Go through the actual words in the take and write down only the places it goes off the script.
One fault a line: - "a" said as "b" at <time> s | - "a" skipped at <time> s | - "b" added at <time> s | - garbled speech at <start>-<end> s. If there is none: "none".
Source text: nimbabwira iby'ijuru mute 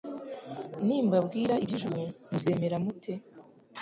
- "muzemera" added at 2.3 s